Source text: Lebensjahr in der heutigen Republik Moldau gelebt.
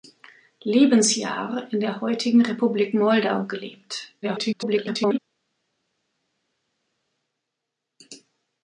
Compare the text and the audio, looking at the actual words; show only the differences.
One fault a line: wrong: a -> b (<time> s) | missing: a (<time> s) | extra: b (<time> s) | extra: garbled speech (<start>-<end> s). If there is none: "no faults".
extra: garbled speech (4.2-5.2 s)